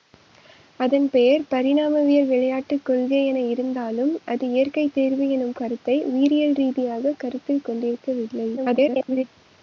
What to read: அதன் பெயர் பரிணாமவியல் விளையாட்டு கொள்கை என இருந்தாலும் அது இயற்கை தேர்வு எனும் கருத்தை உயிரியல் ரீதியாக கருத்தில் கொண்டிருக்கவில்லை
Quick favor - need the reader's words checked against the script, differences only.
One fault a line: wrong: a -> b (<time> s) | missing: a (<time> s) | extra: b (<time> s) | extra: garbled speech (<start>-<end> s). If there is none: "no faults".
extra: garbled speech (8.6-9.2 s)